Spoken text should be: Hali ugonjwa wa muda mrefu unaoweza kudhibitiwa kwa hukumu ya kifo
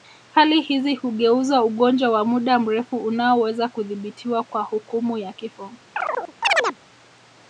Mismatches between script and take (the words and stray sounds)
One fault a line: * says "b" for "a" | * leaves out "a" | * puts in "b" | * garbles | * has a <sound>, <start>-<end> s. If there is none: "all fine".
* puts in "hizi hugeuza"
* has a chirp, 5.9-6.8 s